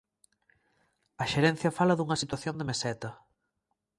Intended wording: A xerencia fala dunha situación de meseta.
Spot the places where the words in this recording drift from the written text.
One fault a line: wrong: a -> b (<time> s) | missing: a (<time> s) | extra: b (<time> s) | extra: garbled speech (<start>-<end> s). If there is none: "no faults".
no faults